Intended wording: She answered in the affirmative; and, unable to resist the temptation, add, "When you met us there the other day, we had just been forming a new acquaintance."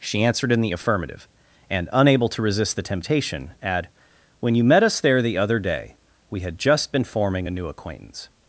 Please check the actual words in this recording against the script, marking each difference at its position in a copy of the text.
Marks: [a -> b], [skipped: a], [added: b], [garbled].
She answered in the affirmative; and, unable to resist the temptation, add, "When you met us there the other day, we had just been forming a new acquaintance."